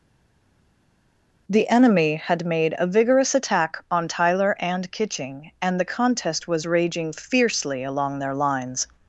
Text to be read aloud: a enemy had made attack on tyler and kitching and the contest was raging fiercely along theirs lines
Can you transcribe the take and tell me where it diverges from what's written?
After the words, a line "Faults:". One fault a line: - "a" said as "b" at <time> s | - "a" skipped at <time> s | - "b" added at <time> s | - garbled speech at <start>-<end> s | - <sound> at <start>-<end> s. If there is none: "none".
the enemy had made a vigorous attack on tyler and kitching and the contest was raging fiercely along their lines
Faults:
- "a" said as "the" at 1.5 s
- "a vigorous" added at 2.8 s
- "theirs" said as "their" at 8.2 s